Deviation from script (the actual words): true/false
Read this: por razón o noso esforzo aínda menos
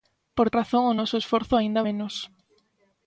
false